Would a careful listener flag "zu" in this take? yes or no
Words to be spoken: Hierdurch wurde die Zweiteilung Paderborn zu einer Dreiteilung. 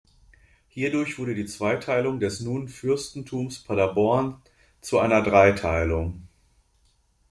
no